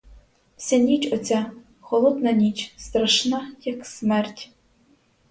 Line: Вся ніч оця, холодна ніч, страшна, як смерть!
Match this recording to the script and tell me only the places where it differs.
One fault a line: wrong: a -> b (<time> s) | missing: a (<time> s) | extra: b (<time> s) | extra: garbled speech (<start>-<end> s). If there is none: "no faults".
no faults